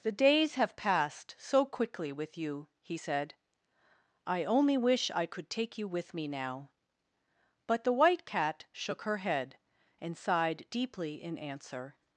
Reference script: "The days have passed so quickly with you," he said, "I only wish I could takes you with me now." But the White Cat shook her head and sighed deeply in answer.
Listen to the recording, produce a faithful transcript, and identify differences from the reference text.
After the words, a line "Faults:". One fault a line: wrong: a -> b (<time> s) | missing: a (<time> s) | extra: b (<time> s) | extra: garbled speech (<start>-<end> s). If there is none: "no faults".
"The days have passed so quickly with you," he said, "I only wish I could take you with me now." But the White Cat shook her head and sighed deeply in answer.
Faults:
wrong: takes -> take (5.5 s)